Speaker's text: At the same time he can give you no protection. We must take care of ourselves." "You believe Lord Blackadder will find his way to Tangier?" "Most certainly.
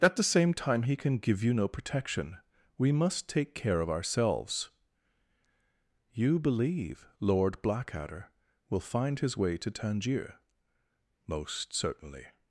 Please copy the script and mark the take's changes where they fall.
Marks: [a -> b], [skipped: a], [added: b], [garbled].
At the same time he can give you no protection. We must take care of ourselves." "You believe Lord Blackadder will find his way to Tangier?" "Most certainly.